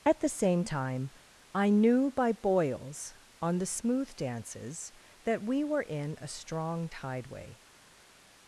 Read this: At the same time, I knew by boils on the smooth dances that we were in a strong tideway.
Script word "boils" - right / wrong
right